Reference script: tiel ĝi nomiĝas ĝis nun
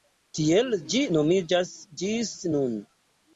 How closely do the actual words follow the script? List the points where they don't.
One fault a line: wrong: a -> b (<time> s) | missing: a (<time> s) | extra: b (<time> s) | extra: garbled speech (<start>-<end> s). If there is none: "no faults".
no faults